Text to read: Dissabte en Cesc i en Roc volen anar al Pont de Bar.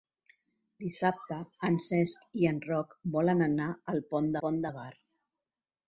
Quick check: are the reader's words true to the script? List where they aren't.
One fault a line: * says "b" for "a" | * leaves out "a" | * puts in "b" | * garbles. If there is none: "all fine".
* puts in "Pont"